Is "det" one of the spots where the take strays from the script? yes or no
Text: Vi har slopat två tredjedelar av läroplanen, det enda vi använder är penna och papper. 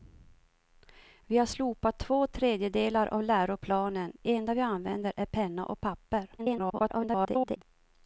yes